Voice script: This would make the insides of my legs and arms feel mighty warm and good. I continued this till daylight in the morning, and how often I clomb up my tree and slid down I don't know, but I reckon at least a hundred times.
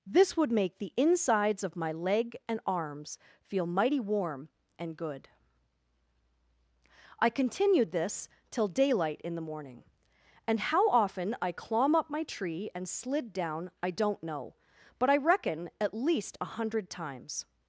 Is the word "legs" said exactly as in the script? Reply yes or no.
no